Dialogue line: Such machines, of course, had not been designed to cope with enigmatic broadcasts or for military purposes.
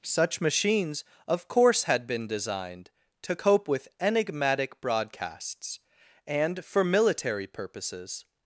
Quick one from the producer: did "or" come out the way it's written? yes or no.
no